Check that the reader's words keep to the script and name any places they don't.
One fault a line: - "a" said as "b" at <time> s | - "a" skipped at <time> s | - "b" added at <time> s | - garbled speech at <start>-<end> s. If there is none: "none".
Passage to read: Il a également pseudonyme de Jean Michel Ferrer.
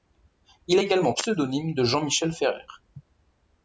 none